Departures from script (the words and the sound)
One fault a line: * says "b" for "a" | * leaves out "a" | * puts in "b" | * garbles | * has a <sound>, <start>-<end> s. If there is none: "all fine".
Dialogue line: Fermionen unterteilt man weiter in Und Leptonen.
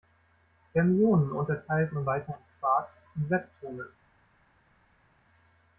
* puts in "Quarks"